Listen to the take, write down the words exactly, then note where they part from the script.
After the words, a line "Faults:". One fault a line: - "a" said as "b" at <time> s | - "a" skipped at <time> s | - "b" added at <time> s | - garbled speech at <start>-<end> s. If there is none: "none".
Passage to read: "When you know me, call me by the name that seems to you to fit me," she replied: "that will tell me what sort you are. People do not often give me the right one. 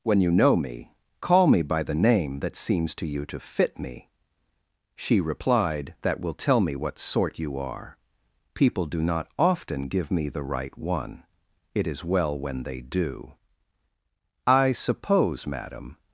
"When you know me, call me by the name that seems to you to fit me," she replied: "that will tell me what sort you are. People do not often give me the right one. It is well when they do." "I suppose, madam
Faults:
- "It is well when they do I suppose madam" added at 11.7 s